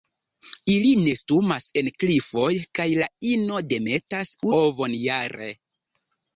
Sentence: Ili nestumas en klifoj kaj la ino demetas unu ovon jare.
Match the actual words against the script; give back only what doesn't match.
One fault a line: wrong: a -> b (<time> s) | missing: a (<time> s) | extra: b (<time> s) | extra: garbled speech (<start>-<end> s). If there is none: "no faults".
missing: unu (4.3 s)